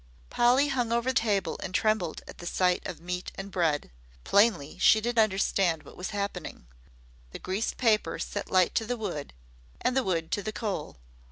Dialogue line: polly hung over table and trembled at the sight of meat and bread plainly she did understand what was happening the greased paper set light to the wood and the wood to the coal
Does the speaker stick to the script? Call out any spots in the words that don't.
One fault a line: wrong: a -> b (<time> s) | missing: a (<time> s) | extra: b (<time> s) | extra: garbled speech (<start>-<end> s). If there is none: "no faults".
no faults